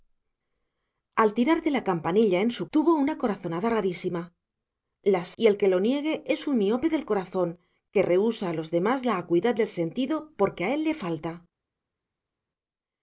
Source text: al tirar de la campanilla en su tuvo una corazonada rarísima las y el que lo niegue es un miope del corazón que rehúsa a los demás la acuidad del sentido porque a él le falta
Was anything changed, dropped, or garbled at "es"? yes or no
no